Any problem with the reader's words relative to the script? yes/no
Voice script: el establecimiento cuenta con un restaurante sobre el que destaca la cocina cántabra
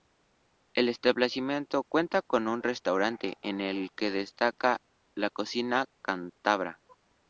yes